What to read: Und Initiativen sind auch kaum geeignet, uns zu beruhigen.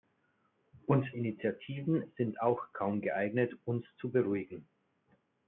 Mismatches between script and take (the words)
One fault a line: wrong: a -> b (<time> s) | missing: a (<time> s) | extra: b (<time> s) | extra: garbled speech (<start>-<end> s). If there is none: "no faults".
no faults